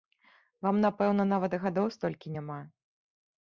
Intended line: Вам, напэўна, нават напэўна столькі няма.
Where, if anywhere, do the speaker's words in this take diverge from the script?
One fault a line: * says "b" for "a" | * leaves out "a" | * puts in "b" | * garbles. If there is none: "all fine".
* says "гадоў" for "напэўна"